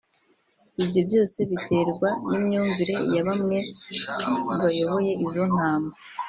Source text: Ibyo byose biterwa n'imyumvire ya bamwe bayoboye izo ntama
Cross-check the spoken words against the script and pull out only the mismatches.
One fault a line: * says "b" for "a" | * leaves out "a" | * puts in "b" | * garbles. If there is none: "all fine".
all fine